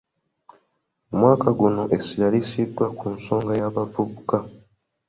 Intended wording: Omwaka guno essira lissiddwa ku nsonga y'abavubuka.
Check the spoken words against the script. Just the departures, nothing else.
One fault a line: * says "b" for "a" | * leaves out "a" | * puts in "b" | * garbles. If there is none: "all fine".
all fine